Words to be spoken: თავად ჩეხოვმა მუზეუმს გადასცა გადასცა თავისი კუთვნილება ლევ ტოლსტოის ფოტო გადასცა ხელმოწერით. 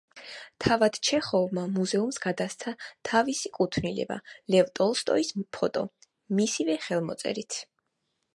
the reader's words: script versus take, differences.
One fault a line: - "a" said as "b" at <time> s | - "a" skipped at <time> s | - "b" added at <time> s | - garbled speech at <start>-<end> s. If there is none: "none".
- "გადასცა" skipped at 2.7 s
- "გადასცა" said as "მისივე" at 6.4 s